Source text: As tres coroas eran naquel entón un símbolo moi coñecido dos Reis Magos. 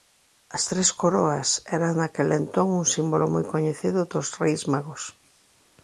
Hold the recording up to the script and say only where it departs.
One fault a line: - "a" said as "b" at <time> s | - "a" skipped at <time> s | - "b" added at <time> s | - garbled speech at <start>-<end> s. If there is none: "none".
none